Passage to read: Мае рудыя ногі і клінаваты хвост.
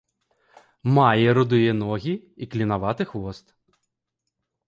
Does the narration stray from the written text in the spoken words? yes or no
no